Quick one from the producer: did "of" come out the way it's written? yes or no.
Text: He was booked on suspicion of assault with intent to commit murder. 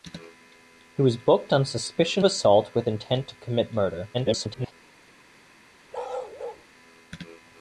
no